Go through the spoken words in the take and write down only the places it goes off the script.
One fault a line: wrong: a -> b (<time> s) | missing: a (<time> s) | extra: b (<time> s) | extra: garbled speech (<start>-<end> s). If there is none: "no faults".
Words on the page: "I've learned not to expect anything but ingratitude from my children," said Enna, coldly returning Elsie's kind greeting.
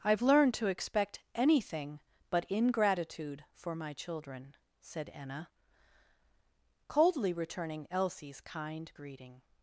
missing: not (0.5 s)
wrong: from -> for (3.5 s)